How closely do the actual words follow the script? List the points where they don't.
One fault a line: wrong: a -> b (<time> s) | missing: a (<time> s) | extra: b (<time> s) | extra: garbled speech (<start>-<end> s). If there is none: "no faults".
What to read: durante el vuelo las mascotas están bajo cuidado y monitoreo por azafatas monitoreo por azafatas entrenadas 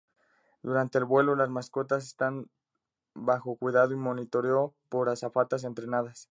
missing: monitoreo por azafatas (5.6 s)